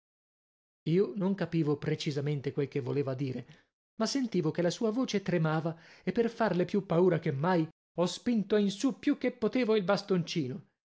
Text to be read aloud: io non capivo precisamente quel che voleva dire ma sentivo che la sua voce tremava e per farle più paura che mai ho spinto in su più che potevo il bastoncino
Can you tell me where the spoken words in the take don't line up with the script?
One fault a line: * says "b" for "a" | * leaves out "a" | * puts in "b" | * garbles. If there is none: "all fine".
all fine